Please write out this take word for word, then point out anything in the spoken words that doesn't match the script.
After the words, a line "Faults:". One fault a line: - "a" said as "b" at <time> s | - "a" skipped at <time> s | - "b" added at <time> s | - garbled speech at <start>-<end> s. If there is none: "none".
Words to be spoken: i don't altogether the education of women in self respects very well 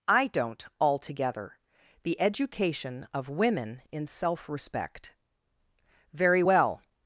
i don't altogether the education of women in self respect very well
Faults:
- "respects" said as "respect" at 4.5 s